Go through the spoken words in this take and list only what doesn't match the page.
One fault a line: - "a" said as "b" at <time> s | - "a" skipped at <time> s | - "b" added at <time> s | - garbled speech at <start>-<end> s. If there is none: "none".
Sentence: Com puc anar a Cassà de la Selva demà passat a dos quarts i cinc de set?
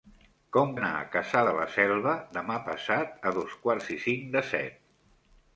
- "puc" skipped at 0.7 s